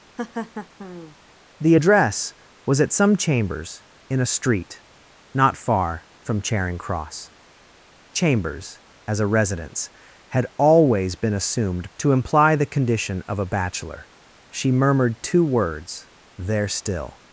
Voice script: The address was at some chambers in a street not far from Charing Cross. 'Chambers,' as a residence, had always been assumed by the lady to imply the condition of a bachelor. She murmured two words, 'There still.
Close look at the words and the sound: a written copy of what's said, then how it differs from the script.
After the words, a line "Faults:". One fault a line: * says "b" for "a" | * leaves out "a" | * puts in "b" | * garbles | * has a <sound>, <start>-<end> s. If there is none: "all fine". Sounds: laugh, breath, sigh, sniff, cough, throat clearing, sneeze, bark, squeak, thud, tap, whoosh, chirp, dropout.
The address was at some chambers in a street not far from Charing Cross. 'Chambers,' as a residence, had always been assumed to imply the condition of a bachelor. She murmured two words, 'There still.
Faults:
* has a laugh, 0.2-1.2 s
* leaves out "by the lady"